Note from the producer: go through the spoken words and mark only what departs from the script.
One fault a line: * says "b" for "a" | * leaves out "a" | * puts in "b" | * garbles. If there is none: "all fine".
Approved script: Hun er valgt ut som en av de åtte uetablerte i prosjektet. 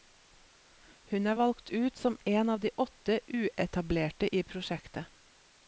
all fine